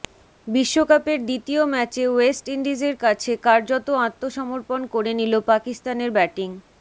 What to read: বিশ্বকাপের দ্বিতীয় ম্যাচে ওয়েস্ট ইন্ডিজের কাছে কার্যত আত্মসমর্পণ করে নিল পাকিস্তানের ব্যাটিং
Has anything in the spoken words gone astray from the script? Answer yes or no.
no